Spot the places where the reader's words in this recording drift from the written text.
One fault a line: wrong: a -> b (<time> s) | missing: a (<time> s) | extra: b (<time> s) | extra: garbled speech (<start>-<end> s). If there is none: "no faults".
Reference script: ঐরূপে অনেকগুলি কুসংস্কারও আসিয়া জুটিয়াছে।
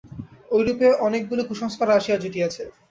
no faults